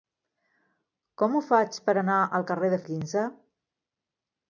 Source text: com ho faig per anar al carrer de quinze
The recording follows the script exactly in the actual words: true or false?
true